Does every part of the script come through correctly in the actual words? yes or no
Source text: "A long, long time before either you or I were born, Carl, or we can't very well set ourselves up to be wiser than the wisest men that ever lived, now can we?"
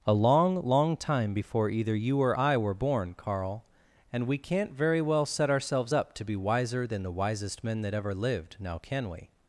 no